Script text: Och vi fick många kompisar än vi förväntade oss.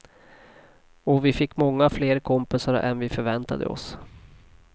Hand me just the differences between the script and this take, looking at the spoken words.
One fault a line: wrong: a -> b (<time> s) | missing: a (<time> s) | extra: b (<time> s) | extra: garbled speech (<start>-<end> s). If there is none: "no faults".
extra: fler (1.9 s)